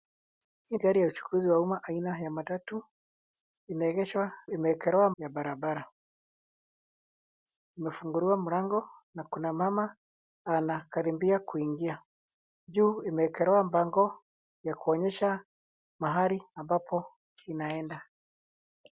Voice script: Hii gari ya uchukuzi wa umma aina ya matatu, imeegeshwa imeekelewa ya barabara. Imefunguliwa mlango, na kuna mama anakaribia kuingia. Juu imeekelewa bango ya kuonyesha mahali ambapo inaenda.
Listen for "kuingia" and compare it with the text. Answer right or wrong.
right